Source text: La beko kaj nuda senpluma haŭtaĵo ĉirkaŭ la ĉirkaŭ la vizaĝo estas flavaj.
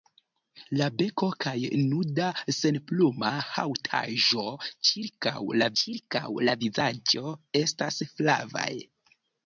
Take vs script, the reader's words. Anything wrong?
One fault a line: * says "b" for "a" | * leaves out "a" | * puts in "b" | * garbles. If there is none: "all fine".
all fine